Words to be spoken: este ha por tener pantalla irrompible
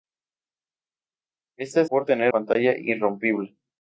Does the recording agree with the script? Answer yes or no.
yes